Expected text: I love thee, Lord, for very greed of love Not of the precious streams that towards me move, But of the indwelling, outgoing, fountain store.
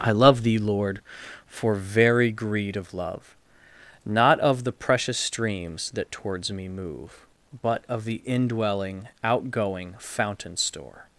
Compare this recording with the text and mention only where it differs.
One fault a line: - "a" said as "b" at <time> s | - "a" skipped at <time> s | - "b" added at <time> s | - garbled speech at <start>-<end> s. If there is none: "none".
none